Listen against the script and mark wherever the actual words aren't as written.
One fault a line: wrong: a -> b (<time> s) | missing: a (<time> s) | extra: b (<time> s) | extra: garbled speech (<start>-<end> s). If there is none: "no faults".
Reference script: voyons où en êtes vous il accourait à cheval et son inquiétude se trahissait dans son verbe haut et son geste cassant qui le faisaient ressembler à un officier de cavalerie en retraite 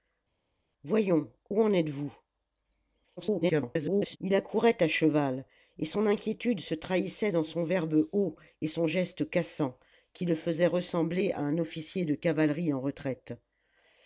extra: garbled speech (3.2-4.2 s)